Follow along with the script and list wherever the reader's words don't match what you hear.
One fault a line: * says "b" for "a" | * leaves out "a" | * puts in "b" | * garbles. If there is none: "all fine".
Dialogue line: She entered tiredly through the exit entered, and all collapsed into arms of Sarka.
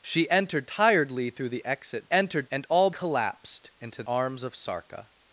all fine